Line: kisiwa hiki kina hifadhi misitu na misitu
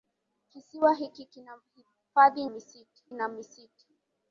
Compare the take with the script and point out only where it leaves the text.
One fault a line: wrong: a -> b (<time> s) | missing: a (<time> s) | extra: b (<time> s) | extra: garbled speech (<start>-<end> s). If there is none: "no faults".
no faults